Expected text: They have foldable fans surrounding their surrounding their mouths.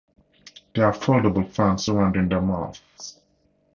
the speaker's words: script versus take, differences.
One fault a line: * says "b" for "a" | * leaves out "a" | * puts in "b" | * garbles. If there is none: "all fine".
* leaves out "surrounding their"